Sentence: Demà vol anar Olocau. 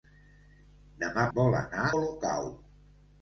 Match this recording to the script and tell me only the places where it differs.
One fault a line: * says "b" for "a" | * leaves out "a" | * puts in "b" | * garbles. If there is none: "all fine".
all fine